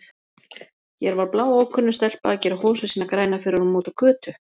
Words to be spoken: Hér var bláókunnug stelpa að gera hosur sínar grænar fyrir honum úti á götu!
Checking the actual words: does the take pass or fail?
pass